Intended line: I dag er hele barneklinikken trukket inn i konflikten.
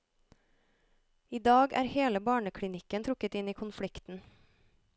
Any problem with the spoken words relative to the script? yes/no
no